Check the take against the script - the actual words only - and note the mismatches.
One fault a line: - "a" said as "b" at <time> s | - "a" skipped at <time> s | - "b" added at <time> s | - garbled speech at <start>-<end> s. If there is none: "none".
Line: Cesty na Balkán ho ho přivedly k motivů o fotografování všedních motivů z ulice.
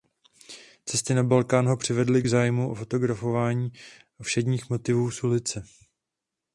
- "ho" skipped at 1.8 s
- "motivů" said as "zájmu" at 2.3 s